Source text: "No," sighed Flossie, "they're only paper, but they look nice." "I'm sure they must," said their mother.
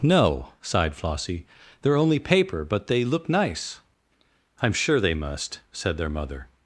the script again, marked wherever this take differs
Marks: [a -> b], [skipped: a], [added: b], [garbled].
"No," sighed Flossie, "they're only paper, but they look nice." "I'm sure they must," said their mother.